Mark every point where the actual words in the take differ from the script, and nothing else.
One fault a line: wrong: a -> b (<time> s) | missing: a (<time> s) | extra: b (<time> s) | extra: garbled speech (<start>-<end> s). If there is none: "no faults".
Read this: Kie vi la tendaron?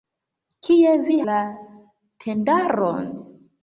no faults